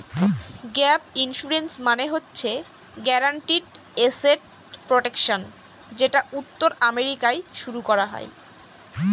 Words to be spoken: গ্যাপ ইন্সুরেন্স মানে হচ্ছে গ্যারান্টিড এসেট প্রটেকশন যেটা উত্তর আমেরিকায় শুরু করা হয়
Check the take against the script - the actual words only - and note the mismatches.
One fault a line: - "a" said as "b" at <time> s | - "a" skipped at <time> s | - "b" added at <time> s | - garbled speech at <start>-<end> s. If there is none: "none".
none